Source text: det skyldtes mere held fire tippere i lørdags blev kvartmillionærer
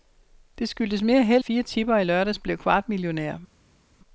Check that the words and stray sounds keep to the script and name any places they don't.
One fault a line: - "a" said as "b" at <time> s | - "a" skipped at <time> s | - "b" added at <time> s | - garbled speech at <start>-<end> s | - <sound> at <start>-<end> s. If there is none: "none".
none